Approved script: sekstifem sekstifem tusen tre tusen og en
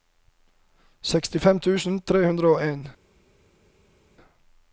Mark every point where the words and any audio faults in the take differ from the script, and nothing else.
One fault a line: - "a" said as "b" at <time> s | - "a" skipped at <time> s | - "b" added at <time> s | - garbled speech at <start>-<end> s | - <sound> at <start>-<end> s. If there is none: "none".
- "sekstifem" skipped at 1.6 s
- "tusen" said as "hundre" at 2.2 s